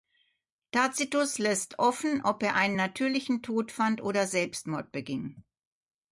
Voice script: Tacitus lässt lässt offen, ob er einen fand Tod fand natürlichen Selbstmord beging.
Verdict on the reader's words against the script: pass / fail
fail